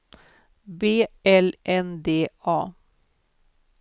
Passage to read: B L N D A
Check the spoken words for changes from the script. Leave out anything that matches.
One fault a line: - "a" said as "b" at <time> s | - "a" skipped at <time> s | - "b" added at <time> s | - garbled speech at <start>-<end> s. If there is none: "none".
none